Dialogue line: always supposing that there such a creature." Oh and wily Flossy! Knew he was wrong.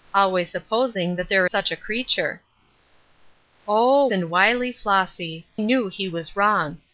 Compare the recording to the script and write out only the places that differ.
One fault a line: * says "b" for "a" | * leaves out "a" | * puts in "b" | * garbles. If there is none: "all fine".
all fine